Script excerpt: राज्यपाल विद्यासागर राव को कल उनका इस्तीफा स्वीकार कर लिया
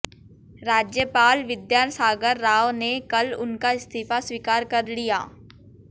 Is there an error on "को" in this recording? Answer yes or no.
yes